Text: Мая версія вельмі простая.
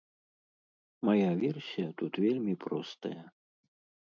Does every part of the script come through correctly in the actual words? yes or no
no